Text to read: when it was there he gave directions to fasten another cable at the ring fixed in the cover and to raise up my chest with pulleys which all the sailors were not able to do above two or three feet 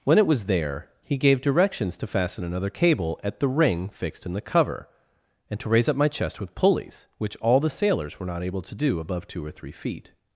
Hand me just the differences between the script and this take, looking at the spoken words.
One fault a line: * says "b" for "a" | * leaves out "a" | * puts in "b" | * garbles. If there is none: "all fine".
all fine